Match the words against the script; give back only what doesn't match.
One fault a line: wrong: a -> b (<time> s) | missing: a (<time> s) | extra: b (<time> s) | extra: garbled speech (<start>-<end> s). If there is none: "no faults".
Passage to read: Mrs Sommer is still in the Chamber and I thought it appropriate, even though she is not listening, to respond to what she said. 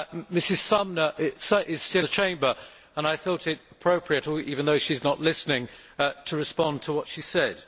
missing: in (2.0 s)